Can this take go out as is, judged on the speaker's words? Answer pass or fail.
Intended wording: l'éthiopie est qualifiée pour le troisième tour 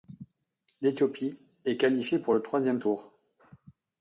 pass